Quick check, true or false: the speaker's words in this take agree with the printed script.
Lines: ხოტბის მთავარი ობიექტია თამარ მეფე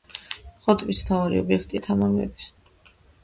true